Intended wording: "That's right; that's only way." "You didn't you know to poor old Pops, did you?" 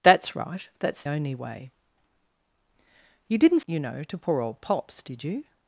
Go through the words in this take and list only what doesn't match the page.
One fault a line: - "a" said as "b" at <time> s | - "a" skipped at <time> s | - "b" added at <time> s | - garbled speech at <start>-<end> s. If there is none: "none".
none